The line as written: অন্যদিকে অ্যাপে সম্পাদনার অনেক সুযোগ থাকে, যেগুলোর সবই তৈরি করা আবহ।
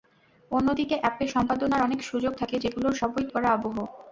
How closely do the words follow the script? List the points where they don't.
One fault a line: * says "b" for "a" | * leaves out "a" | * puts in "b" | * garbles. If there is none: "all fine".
* leaves out "তৈরি"